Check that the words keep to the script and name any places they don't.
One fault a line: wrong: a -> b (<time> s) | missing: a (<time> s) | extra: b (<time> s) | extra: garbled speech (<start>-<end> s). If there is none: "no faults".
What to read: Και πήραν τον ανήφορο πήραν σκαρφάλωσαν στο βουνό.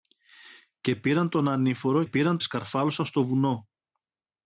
no faults